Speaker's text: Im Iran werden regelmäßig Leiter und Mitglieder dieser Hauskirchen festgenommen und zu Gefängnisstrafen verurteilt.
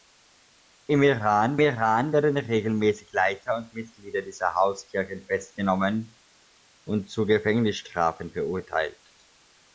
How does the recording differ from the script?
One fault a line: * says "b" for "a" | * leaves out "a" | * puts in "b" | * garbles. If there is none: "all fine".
* puts in "Iran"